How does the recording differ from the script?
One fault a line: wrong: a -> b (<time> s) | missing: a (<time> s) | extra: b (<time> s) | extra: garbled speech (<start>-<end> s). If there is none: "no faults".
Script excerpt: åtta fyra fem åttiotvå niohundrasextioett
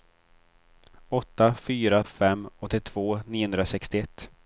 no faults